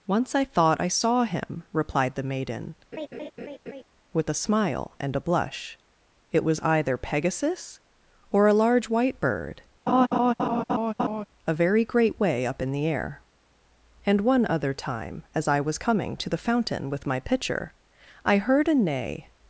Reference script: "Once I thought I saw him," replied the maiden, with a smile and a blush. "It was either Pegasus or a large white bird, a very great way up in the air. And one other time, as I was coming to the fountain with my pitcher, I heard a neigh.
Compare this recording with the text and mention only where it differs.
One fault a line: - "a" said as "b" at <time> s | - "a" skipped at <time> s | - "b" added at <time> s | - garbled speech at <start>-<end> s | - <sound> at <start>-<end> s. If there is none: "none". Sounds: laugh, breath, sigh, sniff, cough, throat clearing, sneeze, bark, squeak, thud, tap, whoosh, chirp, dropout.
- laugh at 2.9-3.8 s
- laugh at 9.9-11.3 s